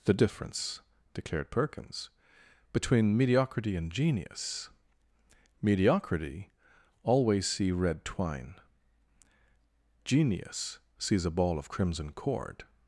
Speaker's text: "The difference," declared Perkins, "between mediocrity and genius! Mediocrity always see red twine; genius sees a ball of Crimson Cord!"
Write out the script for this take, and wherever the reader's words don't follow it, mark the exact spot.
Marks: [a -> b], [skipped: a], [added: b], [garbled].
"The difference," declared Perkins, "between mediocrity and genius! Mediocrity always see red twine; genius sees a ball of Crimson Cord!"